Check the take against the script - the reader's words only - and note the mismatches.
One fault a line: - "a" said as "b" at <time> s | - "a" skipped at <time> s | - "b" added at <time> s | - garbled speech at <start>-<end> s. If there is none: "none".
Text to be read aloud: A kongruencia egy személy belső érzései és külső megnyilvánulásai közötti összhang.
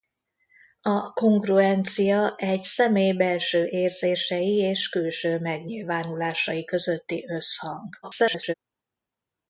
- garbled speech at 8.0-8.5 s